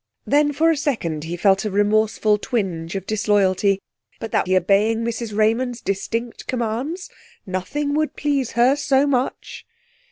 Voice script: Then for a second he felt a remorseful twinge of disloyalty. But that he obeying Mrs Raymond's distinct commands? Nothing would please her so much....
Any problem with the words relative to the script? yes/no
no